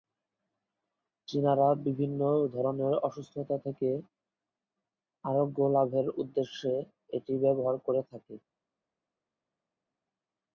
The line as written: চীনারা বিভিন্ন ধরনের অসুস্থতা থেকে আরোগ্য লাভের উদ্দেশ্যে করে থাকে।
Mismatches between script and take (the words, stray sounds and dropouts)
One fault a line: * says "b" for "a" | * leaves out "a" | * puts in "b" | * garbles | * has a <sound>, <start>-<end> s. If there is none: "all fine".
* puts in "এটি ব্যবহার"